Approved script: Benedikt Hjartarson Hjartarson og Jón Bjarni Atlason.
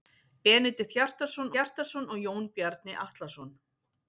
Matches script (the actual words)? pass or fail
pass